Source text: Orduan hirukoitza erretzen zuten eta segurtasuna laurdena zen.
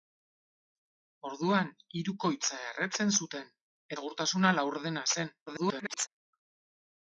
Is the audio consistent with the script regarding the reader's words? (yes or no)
no